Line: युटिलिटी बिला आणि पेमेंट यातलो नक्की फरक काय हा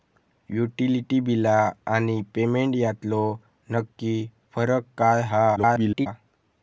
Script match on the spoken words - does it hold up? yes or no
no